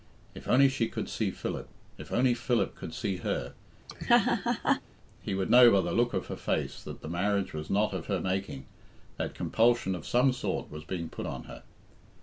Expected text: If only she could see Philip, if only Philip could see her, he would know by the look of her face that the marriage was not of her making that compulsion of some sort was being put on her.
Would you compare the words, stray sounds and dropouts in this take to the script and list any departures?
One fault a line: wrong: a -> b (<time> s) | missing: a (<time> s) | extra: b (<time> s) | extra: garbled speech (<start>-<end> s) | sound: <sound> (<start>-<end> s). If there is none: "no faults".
sound: laugh (3.9-4.8 s)